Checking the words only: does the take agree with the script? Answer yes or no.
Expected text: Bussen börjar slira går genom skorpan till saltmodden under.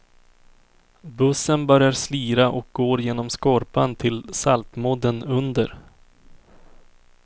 no